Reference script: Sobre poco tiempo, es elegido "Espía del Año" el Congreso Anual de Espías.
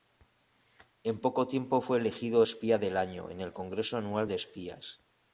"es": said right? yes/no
no